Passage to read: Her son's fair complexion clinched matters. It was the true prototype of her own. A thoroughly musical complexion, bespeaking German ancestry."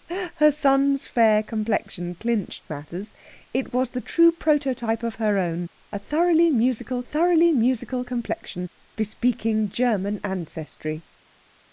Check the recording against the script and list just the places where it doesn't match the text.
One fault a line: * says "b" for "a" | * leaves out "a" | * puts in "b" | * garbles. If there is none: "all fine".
* puts in "thoroughly musical"